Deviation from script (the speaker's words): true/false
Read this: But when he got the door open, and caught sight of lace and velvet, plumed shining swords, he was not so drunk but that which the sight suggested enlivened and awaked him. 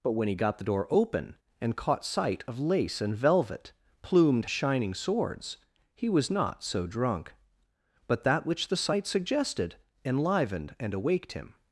false